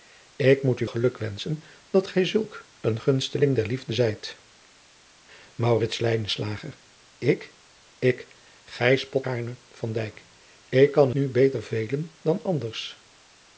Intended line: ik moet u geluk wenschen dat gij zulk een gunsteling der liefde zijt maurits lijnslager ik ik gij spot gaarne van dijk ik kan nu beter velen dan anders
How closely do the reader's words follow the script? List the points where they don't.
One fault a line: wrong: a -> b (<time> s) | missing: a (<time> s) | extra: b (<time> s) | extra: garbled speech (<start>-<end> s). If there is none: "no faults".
no faults